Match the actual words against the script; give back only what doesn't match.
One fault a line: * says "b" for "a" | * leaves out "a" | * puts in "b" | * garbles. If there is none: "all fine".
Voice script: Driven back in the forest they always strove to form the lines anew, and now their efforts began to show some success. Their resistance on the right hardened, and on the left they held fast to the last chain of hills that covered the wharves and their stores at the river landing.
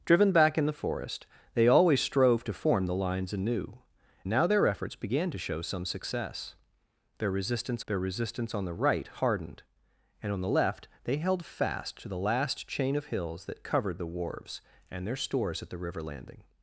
* leaves out "and"
* puts in "their resistance"